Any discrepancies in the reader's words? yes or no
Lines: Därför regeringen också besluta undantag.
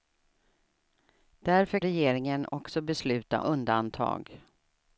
no